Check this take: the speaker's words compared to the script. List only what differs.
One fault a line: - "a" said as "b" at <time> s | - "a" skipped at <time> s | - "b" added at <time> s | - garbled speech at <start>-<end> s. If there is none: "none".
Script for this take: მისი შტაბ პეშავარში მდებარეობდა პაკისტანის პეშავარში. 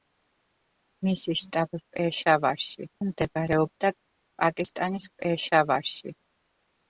none